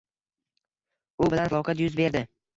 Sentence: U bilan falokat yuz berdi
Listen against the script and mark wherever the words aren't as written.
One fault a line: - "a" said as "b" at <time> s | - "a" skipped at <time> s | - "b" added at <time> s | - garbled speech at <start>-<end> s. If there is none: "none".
none